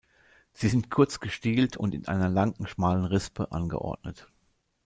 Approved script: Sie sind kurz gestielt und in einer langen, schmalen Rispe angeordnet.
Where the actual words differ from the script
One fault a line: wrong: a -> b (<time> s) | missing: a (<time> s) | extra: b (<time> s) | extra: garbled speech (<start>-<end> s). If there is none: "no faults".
no faults